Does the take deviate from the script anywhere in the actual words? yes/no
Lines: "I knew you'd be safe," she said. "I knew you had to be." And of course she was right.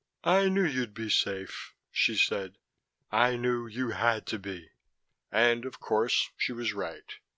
no